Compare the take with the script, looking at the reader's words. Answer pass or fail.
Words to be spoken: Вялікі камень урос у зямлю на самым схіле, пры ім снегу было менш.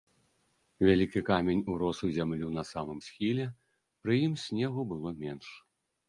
pass